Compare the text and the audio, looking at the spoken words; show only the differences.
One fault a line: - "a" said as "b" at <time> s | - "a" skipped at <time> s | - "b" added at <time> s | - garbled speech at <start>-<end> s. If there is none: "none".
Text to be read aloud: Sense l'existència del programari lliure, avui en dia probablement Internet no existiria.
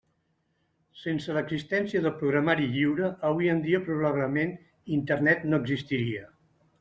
none